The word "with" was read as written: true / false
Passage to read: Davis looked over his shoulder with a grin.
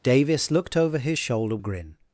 false